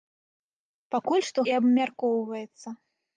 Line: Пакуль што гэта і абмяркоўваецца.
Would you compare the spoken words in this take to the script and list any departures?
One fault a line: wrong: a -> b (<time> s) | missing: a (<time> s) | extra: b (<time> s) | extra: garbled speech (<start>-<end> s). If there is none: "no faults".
missing: гэта (1.4 s)